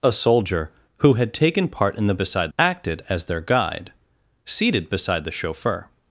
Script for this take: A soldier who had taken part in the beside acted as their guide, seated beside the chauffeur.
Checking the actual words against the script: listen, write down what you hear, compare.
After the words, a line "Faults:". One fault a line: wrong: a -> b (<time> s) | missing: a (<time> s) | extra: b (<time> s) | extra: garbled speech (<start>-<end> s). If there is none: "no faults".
A soldier who had taken part in the beside acted as their guide, seated beside the chauffeur.
Faults:
no faults